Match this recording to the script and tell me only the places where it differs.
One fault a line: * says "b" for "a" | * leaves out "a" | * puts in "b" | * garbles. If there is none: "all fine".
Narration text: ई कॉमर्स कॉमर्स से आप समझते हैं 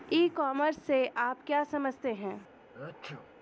* leaves out "कॉमर्स"
* puts in "क्या"